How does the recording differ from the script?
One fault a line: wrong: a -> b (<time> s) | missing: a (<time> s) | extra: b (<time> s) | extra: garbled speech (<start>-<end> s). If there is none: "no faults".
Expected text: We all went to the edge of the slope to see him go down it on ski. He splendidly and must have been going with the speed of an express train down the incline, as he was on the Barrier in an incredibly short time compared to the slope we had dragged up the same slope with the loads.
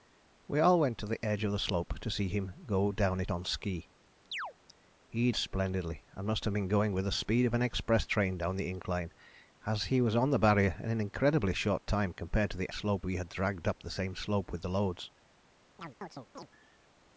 no faults